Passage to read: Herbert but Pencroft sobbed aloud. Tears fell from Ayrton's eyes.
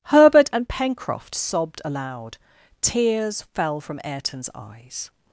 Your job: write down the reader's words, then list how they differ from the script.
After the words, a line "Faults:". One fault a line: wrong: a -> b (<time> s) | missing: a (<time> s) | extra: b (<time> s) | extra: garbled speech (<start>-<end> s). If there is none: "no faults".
Herbert and Pencroft sobbed aloud. Tears fell from Ayrton's eyes.
Faults:
wrong: but -> and (0.5 s)